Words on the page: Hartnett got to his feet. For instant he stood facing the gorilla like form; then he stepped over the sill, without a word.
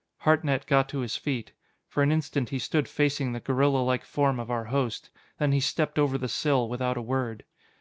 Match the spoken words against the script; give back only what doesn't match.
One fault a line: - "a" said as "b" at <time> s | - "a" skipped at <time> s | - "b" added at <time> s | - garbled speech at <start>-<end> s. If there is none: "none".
- "an" added at 2.0 s
- "of our host" added at 4.4 s